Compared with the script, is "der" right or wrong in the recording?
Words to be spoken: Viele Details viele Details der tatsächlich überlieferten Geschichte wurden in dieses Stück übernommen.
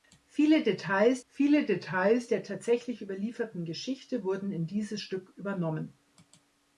right